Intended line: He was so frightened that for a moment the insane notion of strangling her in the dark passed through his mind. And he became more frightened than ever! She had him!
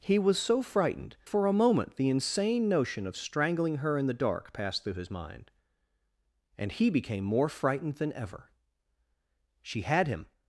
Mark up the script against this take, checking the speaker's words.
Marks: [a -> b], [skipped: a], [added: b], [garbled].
He was so frightened [skipped: that] for a moment the insane notion of strangling her in the dark passed through his mind. And he became more frightened than ever! She had him!